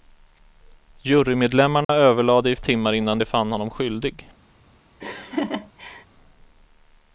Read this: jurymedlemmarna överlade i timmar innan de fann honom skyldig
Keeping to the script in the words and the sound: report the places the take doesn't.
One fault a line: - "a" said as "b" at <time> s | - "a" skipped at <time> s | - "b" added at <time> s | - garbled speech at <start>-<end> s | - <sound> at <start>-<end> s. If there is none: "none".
- dropout at 1.8-1.9 s
- laugh at 5.0-6.1 s